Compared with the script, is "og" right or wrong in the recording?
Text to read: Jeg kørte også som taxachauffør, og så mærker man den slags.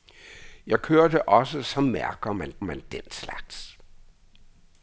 wrong